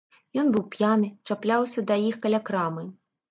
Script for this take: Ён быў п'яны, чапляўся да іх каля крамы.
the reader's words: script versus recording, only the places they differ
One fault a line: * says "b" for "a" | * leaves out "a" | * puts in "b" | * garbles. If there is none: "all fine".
all fine